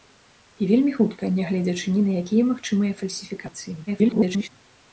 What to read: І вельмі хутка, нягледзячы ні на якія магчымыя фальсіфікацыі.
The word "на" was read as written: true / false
true